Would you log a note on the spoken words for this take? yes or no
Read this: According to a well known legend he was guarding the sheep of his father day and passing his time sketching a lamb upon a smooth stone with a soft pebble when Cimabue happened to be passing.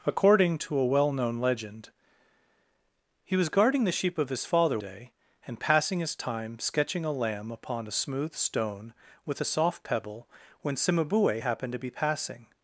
no